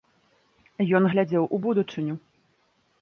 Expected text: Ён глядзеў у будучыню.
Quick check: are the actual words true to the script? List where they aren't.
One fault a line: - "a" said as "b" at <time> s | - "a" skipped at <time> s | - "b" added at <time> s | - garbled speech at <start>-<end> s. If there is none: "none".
none